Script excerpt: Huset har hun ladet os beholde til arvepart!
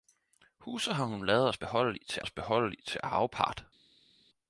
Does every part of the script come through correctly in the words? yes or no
no